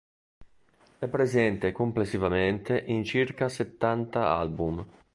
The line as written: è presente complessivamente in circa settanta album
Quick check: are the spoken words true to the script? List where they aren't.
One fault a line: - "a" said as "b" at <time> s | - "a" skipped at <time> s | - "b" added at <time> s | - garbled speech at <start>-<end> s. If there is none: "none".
none